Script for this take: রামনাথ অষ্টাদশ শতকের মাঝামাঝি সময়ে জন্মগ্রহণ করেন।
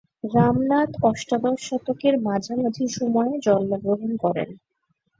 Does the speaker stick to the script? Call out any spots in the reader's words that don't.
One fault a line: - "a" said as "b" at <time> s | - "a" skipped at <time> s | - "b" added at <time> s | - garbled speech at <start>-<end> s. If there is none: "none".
none